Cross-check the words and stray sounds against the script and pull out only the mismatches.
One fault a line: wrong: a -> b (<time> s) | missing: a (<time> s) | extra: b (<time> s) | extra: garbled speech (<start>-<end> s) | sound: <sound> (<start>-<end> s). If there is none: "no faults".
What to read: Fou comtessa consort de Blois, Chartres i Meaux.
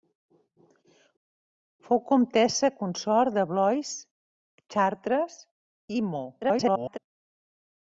extra: garbled speech (6.4-7.0 s)